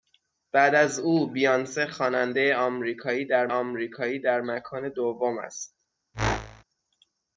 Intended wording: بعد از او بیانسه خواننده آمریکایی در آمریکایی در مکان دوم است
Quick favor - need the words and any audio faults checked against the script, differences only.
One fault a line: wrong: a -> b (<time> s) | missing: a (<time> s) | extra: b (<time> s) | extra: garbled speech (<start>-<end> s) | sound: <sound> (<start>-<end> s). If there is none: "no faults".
sound: whoosh (6.1-6.6 s)